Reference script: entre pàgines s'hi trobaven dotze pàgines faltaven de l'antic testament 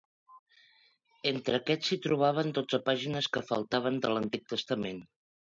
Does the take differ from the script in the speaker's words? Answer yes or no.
yes